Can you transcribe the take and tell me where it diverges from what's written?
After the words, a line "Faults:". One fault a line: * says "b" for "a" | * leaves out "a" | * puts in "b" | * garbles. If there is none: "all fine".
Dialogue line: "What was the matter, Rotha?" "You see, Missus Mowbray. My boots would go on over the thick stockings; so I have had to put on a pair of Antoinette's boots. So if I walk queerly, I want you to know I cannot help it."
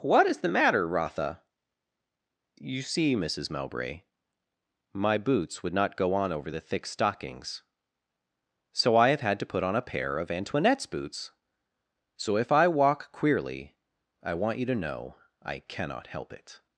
"What is the matter, Rotha?" "You see, Missus Mowbray. My boots would not go on over the thick stockings; so I have had to put on a pair of Antoinette's boots. So if I walk queerly, I want you to know I cannot help it."
Faults:
* says "is" for "was"
* puts in "not"